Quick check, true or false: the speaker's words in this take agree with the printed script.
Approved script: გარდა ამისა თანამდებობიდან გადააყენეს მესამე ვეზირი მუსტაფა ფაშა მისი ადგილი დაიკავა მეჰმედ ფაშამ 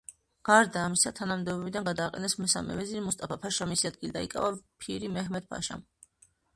false